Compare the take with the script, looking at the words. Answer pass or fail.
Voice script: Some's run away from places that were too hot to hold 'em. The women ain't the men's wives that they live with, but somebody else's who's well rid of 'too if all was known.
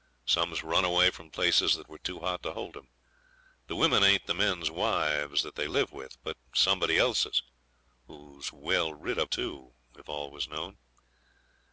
pass